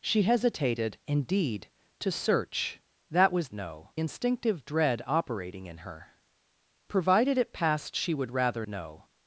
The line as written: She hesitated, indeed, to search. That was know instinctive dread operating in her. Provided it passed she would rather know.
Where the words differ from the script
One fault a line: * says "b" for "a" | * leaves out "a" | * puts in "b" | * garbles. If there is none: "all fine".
all fine